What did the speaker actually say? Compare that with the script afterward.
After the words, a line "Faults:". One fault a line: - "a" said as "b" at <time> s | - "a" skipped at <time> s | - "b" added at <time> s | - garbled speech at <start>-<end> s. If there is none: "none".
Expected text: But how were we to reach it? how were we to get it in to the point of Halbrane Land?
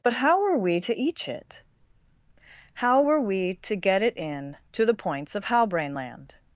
But how were we to each it? how were we to get it in to the points of Halbrane Land?
Faults:
- "reach" said as "each" at 0.9 s
- "point" said as "points" at 4.9 s